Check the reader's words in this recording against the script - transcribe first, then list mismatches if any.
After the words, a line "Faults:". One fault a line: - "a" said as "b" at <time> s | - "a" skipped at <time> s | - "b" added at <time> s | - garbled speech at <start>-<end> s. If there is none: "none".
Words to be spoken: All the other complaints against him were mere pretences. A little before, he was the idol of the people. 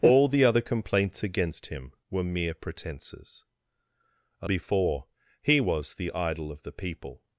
All the other complaints against him were mere pretences. A before, he was the idol of the people.
Faults:
- "little" skipped at 4.5 s